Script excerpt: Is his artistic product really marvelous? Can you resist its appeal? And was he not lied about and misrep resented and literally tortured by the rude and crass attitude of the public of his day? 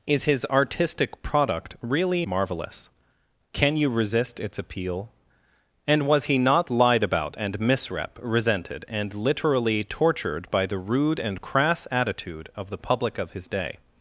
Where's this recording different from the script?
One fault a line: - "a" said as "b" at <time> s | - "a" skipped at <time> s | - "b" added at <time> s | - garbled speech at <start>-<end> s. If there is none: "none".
none